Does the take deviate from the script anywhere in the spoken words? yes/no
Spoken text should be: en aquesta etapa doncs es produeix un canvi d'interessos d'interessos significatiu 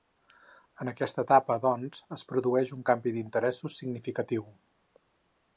yes